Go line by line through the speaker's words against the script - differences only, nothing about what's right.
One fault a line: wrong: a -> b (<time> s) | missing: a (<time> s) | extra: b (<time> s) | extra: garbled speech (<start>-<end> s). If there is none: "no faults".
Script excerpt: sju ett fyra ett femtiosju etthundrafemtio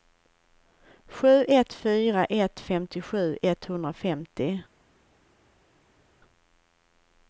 no faults